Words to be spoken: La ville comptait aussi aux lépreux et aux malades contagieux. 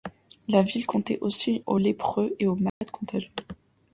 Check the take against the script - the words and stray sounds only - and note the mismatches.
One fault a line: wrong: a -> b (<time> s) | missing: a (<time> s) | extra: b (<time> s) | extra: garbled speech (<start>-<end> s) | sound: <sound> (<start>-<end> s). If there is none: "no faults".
sound: dropout (2.7-2.8 s)